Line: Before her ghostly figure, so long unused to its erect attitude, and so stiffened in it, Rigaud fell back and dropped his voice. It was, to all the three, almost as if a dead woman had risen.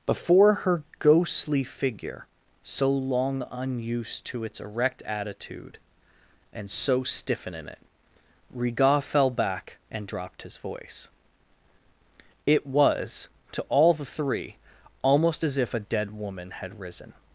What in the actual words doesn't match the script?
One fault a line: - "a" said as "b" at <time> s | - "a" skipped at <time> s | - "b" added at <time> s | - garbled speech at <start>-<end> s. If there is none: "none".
- "stiffened" said as "stiffen" at 7.0 s